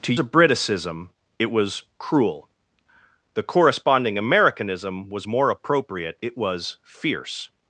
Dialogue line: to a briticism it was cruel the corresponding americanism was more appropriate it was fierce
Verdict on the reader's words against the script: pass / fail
pass